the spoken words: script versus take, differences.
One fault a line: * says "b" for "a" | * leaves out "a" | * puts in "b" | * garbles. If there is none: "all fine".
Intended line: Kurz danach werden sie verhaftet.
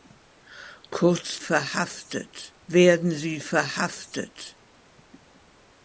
* says "verhaftet" for "danach"